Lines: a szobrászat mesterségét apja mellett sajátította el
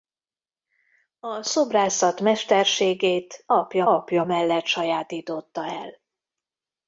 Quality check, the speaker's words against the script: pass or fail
fail